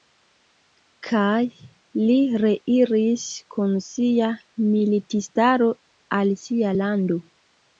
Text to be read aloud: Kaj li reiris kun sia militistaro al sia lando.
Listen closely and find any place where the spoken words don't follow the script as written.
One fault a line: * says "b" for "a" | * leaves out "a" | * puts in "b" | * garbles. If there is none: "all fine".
all fine